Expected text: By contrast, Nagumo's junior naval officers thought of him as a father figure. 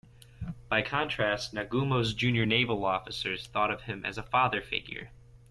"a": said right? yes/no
yes